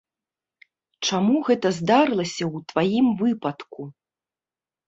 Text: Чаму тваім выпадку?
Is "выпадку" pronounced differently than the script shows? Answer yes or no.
no